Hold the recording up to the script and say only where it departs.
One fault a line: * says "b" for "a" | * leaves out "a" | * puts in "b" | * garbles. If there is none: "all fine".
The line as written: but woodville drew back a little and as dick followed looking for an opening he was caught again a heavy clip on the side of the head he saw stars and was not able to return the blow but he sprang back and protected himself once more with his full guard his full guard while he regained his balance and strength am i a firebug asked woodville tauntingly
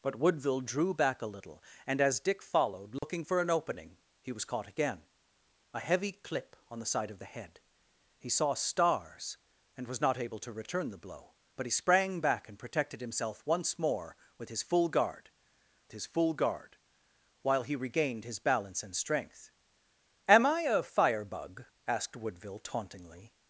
all fine